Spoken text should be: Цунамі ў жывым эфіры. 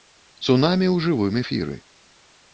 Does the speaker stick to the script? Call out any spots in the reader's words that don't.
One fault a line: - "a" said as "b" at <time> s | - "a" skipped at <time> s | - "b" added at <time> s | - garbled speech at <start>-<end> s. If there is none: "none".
none